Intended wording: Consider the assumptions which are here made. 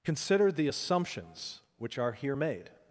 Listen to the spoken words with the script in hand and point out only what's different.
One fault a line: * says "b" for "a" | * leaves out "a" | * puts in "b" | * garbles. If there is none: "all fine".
all fine